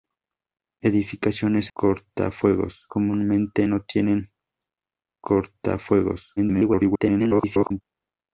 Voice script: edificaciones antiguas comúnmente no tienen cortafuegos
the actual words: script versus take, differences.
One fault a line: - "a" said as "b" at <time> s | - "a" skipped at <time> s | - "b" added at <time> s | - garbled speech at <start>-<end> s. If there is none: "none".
- "antiguas" said as "cortafuegos" at 1.7 s
- garbled speech at 6.4-7.8 s